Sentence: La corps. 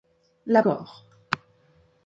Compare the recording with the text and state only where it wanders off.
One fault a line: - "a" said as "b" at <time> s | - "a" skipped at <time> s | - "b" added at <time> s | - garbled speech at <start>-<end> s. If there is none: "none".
none